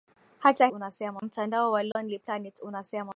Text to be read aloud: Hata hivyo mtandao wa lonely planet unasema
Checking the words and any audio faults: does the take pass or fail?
fail